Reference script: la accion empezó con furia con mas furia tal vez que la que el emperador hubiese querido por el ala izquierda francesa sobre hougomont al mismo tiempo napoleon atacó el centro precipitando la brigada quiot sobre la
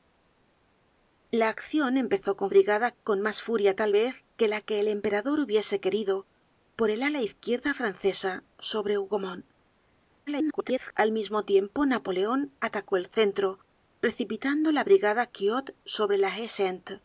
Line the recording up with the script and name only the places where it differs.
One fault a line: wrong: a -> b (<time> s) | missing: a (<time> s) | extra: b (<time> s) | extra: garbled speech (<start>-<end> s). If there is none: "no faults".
wrong: furia -> brigada (2.5 s)
extra: garbled speech (10.3-10.9 s)